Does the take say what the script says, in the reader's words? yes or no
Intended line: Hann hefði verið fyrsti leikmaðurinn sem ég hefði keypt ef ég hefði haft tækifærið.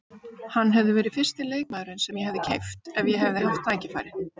yes